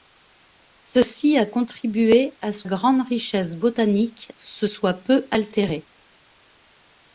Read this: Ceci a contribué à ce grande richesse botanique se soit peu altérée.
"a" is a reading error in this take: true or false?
false